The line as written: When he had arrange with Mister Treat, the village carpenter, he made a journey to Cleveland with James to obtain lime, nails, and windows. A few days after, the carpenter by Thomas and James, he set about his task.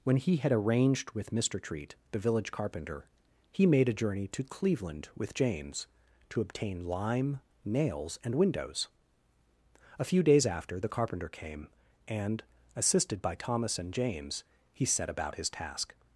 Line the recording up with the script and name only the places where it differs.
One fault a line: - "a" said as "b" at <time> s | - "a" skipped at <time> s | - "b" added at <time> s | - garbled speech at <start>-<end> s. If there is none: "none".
- "arrange" said as "arranged" at 0.5 s
- "came and assisted" added at 11.3 s